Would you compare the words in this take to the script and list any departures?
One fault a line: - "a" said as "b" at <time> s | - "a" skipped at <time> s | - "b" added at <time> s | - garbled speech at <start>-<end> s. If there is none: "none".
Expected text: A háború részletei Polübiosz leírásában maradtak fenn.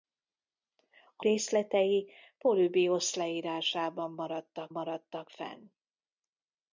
- "háború" skipped at 1.2 s
- "maradtak" added at 4.7 s